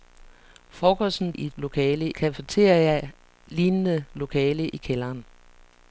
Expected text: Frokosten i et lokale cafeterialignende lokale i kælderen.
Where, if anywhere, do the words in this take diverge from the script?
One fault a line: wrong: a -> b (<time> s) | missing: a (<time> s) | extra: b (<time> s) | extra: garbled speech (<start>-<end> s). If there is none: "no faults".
no faults